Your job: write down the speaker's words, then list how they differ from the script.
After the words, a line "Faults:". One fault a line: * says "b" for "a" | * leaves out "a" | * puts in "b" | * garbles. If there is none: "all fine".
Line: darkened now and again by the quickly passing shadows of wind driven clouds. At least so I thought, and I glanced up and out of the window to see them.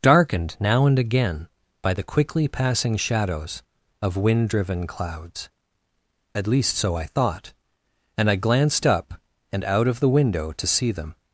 darkened now and again by the quickly passing shadows of wind driven clouds. At least so I thought, and I glanced up and out of the window to see them.
Faults:
all fine